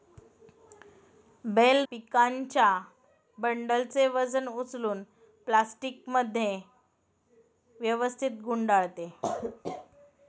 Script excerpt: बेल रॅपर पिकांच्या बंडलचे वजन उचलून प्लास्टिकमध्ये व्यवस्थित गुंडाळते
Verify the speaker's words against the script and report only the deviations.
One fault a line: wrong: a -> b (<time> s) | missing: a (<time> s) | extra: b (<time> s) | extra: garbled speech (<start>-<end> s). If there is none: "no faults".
missing: रॅपर (1.9 s)